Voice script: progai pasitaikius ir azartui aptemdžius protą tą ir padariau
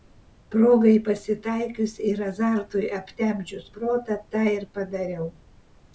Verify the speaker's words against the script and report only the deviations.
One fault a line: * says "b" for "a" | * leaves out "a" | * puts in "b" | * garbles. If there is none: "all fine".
all fine